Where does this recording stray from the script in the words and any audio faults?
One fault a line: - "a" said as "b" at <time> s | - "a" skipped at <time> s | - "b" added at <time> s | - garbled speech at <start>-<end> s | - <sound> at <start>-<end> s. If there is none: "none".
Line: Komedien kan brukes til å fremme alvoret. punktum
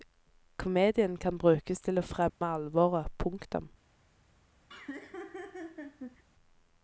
- dropout at 2.3-2.4 s
- laugh at 4.7-6.2 s